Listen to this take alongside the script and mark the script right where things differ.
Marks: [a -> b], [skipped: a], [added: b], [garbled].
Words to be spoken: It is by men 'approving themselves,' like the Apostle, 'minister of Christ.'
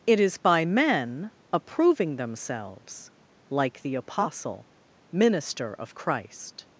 It is by men 'approving themselves,' like the Apostle, 'minister of Christ.'